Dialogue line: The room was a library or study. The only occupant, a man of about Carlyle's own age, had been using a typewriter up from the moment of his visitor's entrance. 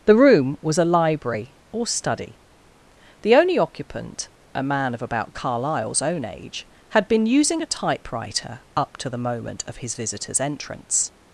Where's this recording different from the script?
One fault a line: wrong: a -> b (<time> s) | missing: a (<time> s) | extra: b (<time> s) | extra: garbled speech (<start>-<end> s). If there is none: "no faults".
wrong: from -> to (9.0 s)